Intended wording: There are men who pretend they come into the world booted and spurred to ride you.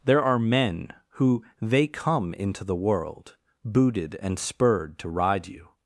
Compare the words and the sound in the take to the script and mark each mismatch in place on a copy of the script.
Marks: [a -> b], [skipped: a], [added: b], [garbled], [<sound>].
There are men who [skipped: pretend] they come into the world booted and spurred to ride you.